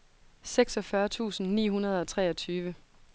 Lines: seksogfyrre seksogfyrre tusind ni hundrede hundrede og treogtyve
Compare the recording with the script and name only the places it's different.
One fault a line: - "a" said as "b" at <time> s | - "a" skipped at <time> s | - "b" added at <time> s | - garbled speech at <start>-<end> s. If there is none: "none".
- "seksogfyrre" skipped at 1.1 s
- "hundrede" skipped at 2.0 s